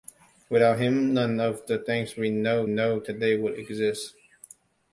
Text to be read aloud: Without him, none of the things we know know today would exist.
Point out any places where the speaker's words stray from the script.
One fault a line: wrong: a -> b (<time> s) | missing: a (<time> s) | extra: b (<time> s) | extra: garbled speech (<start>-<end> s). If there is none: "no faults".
no faults